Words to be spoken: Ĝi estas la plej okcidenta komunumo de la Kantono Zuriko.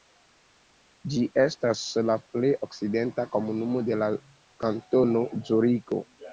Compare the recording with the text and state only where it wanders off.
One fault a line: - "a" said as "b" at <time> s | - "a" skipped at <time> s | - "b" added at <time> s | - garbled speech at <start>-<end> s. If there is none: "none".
none